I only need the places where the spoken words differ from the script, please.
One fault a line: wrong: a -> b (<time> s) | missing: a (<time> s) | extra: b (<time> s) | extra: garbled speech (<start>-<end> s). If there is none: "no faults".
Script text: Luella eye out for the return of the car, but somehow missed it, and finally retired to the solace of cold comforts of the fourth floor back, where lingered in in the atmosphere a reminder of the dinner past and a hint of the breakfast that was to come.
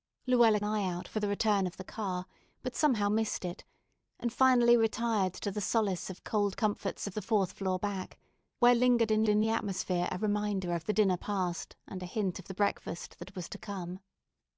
no faults